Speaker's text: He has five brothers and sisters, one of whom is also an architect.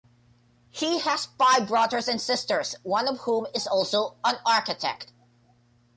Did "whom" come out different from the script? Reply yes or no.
no